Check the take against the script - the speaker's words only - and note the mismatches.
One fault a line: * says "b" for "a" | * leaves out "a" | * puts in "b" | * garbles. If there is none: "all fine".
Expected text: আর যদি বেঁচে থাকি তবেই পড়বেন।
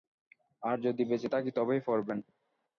all fine